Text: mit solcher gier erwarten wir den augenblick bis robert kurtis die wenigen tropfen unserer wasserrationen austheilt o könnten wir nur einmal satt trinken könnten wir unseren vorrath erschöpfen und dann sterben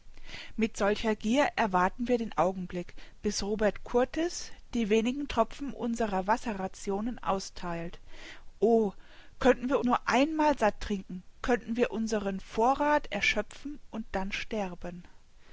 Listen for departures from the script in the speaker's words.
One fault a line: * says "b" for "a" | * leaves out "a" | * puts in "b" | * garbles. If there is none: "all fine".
all fine